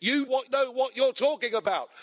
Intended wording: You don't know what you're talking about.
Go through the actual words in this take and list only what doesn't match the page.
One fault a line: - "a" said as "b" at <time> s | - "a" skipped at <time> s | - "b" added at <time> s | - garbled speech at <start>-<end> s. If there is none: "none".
- "don't" said as "what" at 0.2 s